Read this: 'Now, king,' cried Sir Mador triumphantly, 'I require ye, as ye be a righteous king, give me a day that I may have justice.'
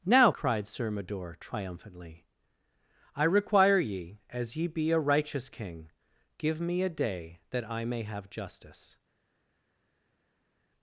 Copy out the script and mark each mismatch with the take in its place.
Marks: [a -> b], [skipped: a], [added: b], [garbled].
'Now, [skipped: king,'] cried Sir Mador triumphantly, 'I require ye, as ye be a righteous king, give me a day that I may have justice.'